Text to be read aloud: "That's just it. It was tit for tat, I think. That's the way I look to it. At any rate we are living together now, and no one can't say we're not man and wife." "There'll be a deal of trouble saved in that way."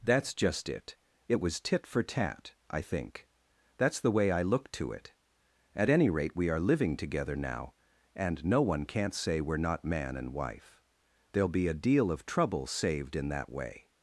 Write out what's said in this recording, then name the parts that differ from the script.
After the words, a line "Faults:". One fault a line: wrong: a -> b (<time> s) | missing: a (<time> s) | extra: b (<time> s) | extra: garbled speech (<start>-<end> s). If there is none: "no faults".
"That's just it. It was tit for tat, I think. That's the way I look to it. At any rate we are living together now, and no one can't say we're not man and wife." "There'll be a deal of trouble saved in that way."
Faults:
no faults